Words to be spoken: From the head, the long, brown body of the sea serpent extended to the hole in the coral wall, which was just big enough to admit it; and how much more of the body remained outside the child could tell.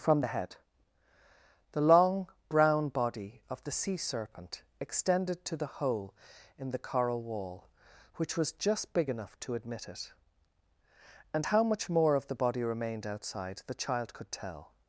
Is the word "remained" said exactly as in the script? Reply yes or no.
yes